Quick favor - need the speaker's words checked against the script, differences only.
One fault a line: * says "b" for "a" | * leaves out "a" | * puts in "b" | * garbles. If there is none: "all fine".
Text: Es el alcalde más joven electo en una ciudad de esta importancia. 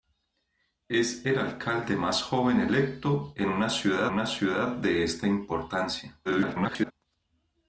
* puts in "una ciudad"
* garbles